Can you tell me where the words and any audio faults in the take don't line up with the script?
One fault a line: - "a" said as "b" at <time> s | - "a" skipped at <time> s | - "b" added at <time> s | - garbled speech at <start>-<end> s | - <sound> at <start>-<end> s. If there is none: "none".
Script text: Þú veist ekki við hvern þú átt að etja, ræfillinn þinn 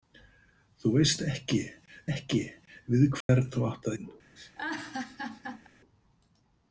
- "ekki" added at 2.1 s
- dropout at 3.2-3.3 s
- "að etja ræfillinn" skipped at 3.9 s
- laugh at 4.4-5.7 s